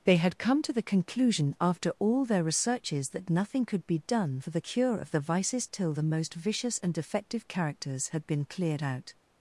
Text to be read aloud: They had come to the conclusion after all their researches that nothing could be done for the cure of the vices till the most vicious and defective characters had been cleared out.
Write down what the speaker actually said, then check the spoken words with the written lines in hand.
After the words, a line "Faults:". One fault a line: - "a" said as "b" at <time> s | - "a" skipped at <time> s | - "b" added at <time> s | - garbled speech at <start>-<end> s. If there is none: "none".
They had come to the conclusion after all their researches that nothing could be done for the cure of the vices till the most vicious and defective characters had been cleared out.
Faults:
none